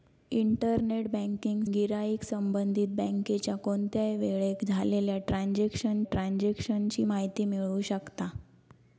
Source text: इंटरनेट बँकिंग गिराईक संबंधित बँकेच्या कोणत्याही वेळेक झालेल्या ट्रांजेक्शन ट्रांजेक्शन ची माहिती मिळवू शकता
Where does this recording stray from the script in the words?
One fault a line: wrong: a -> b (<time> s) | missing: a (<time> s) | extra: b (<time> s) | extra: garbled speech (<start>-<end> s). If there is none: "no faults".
no faults